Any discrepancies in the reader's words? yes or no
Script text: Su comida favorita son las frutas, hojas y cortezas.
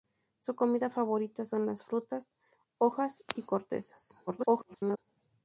yes